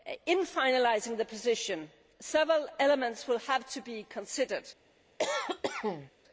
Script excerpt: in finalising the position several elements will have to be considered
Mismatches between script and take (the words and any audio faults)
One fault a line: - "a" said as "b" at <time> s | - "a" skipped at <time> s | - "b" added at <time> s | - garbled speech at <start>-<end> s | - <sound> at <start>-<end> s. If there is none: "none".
- cough at 5.2-6.1 s